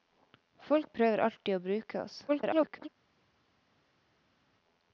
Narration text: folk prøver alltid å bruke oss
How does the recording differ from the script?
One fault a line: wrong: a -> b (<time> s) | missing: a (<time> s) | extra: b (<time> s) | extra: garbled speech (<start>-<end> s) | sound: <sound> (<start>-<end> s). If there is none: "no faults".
extra: garbled speech (2.3-2.9 s)